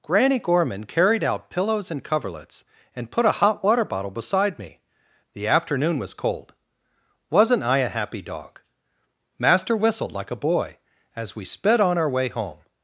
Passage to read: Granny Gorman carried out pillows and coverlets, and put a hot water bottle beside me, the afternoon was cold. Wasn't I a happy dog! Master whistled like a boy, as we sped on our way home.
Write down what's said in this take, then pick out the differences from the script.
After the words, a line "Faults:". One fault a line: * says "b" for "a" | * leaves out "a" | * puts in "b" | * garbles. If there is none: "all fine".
Granny Gorman carried out pillows and coverlets, and put a hot water bottle beside me, the afternoon was cold. Wasn't I a happy dog! Master whistled like a boy, as we sped on our way home.
Faults:
all fine